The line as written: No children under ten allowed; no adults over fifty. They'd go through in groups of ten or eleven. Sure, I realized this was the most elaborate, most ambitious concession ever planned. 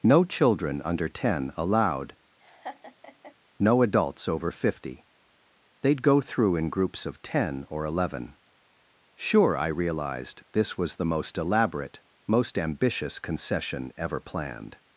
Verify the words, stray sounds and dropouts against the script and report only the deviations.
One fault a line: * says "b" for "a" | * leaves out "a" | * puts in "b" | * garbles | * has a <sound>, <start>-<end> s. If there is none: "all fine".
* has a laugh, 2.4-3.3 s